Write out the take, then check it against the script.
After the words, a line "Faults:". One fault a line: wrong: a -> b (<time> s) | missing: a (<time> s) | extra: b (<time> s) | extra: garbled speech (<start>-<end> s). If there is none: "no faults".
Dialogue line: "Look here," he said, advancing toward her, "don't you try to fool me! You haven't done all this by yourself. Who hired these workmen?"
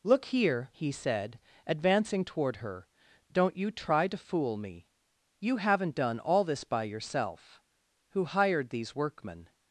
"Look here," he said, advancing toward her, "don't you try to fool me! You haven't done all this by yourself. Who hired these workmen?"
Faults:
no faults